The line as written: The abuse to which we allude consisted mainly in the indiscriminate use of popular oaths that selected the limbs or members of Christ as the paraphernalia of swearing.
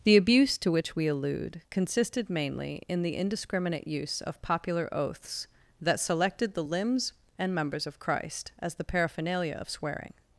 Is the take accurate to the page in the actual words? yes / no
no